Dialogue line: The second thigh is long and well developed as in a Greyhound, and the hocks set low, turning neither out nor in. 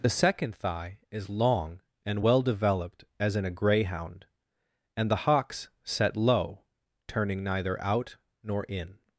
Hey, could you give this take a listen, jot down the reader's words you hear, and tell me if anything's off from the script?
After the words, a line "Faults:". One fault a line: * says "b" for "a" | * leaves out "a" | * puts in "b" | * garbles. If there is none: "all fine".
The second thigh is long and well developed as in a Greyhound, and the hocks set low, turning neither out nor in.
Faults:
all fine